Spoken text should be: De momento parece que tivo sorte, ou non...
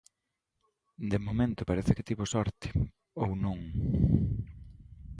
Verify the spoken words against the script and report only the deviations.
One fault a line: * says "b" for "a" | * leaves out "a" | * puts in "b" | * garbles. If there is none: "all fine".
all fine